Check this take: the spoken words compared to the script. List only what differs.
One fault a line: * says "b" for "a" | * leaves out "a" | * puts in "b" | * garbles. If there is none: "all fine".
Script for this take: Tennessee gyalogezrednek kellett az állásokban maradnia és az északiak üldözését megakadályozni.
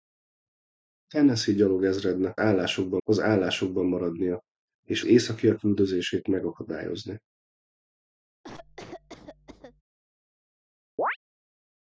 * says "állásokban" for "kellett"
* leaves out "az"